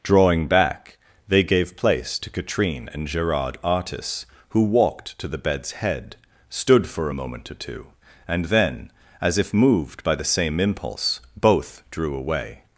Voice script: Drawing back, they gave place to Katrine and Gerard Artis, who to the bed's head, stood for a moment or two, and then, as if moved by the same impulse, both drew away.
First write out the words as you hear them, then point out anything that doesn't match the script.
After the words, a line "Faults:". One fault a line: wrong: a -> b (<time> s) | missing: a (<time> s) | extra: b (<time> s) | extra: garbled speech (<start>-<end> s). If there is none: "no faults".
Drawing back, they gave place to Katrine and Gerard Artis, who walked to the bed's head, stood for a moment or two, and then, as if moved by the same impulse, both drew away.
Faults:
extra: walked (4.6 s)